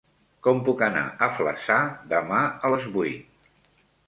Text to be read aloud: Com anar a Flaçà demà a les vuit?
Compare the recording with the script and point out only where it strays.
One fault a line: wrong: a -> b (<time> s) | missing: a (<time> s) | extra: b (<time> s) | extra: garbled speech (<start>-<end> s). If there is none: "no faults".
extra: puc (0.7 s)